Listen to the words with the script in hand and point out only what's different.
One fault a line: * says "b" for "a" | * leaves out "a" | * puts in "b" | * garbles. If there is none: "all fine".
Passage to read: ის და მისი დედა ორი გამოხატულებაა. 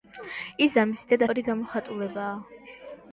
all fine